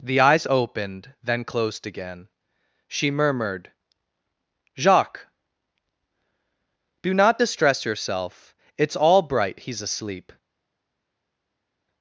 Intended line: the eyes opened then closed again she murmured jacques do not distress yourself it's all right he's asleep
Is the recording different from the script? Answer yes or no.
yes